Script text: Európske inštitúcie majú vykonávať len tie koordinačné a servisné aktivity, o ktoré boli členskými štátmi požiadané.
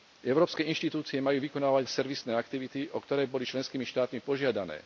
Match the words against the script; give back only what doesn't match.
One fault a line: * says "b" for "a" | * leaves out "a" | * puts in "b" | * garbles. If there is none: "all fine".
* leaves out "len tie koordinačné"